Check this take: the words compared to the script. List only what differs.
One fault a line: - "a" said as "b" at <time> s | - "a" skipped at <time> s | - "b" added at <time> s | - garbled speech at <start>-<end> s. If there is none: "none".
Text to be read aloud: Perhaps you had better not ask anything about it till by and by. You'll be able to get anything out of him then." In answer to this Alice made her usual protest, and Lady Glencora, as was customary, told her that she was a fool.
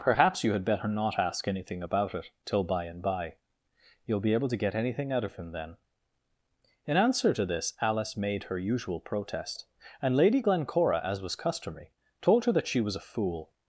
none